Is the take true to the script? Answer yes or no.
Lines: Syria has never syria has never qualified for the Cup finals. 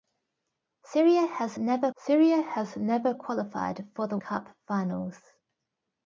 yes